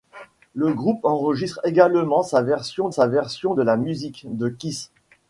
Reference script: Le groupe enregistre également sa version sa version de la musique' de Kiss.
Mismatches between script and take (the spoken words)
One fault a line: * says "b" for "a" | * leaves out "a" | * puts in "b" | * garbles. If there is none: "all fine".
all fine